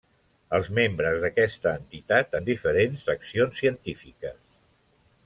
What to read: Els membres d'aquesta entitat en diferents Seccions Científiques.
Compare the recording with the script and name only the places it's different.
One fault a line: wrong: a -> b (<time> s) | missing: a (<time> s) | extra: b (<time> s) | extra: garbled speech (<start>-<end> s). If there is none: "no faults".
no faults